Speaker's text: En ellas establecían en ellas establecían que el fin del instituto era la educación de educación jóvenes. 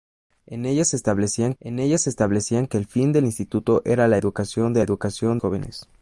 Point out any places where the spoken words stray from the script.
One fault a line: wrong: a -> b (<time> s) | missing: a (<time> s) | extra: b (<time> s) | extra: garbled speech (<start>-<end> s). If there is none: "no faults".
no faults